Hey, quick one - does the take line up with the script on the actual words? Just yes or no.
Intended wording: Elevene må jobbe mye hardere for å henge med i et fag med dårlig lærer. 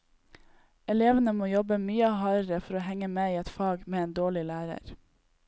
no